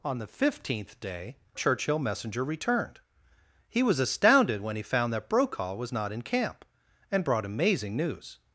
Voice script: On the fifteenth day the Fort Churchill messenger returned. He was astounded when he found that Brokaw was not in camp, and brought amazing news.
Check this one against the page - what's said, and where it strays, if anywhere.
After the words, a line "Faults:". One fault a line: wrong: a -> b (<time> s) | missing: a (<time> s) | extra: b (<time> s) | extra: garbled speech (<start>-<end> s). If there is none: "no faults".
On the fifteenth day Churchill messenger returned. He was astounded when he found that Brokaw was not in camp, and brought amazing news.
Faults:
missing: the Fort (1.4 s)